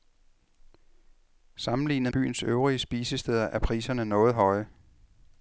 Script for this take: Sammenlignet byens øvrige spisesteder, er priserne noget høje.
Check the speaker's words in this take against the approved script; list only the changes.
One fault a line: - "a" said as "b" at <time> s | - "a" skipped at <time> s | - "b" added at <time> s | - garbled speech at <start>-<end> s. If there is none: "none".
none